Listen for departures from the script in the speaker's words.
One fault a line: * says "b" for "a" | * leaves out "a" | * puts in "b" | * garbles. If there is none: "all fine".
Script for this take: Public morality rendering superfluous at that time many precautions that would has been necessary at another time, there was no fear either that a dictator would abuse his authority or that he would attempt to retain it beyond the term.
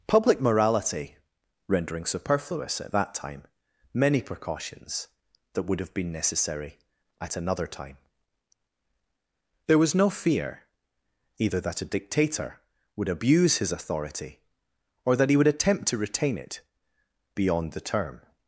* says "have" for "has"